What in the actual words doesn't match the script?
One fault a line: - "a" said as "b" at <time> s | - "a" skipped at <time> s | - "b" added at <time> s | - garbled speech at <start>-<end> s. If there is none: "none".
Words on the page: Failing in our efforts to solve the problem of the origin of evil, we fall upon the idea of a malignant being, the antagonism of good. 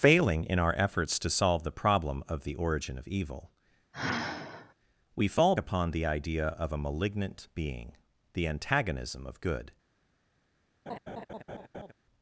none